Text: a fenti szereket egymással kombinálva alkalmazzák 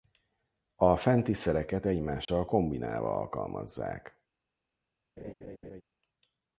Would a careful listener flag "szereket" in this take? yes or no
no